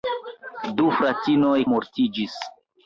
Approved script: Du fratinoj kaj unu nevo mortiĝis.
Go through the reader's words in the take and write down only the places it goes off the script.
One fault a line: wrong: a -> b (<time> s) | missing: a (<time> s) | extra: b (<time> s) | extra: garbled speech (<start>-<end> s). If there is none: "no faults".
missing: kaj unu nevo (1.6 s)